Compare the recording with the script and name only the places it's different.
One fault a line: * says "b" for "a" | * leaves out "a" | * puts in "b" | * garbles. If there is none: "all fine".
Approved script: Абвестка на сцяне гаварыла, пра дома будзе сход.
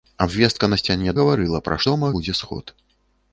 all fine